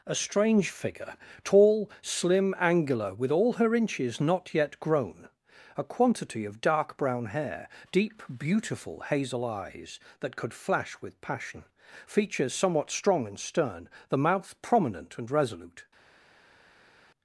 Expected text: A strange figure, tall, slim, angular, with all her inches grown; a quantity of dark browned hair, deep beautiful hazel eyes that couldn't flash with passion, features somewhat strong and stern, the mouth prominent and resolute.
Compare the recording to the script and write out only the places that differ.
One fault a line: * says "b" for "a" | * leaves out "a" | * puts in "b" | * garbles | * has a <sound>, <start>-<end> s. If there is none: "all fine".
* puts in "not yet"
* says "brown" for "browned"
* says "could" for "couldn't"